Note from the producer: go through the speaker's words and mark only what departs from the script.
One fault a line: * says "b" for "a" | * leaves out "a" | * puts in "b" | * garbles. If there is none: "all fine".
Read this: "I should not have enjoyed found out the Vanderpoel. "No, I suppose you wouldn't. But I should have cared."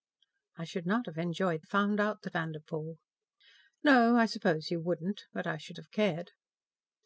all fine